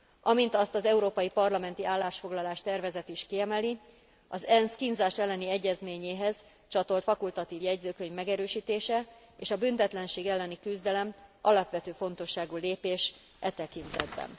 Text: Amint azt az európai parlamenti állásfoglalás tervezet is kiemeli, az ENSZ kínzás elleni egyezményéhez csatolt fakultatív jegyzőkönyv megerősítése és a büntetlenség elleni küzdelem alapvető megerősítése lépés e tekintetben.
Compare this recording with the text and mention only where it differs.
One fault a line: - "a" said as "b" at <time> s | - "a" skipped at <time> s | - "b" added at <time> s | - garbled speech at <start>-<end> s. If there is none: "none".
- "megerősítése" said as "fontosságú" at 11.9 s